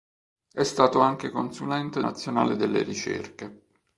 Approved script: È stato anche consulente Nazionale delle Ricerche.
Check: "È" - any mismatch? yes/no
no